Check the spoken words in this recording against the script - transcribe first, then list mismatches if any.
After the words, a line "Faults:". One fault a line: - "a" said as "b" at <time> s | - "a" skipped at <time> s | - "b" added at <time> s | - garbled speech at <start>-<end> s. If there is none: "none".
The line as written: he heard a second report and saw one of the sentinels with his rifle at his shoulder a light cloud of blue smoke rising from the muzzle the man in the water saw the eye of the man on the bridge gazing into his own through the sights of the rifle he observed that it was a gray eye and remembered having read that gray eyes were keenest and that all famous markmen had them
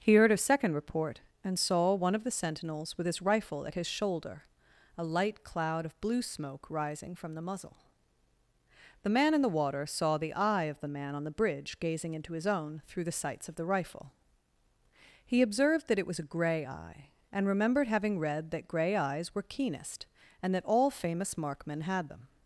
he heard a second report and saw one of the sentinels with his rifle at his shoulder a light cloud of blue smoke rising from the muzzle the man in the water saw the eye of the man on the bridge gazing into his own through the sights of the rifle he observed that it was a gray eye and remembered having read that gray eyes were keenest and that all famous markmen had them
Faults:
none